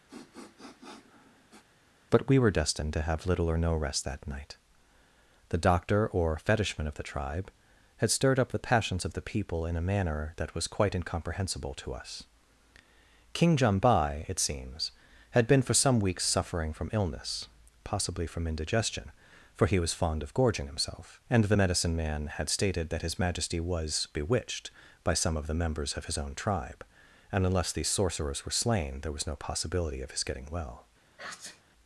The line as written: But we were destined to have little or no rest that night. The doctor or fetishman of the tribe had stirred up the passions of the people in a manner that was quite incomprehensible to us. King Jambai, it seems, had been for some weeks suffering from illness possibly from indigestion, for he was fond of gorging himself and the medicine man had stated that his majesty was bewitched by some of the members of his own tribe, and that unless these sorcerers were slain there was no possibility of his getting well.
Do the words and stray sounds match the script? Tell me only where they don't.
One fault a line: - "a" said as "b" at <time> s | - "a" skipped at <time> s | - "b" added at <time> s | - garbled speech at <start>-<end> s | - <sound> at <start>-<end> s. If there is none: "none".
- sniff at 0.1-1.6 s
- "that" skipped at 27.5 s
- sneeze at 31.2-31.6 s